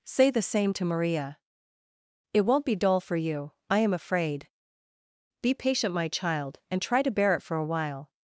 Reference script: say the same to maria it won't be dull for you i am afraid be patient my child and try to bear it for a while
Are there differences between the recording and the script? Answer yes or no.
no